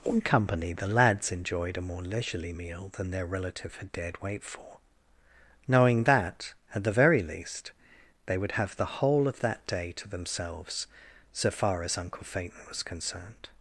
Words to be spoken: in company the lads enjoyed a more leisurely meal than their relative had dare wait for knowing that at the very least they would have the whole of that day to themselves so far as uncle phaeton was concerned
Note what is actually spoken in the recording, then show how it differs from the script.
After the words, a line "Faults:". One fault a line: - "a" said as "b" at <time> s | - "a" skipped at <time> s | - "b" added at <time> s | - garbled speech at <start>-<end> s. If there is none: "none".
in company the lads enjoyed a more leisurely meal than their relative had dared wait for knowing that at the very least they would have the whole of that day to themselves so far as uncle phaeton was concerned
Faults:
- "dare" said as "dared" at 3.9 s